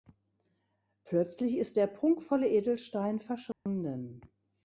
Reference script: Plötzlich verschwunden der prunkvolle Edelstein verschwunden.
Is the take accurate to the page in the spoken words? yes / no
no